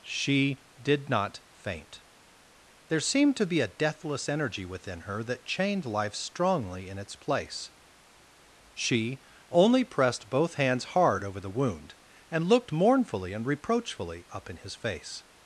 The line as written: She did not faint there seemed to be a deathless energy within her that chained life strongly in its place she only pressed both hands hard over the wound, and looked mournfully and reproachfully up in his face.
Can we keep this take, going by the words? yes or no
yes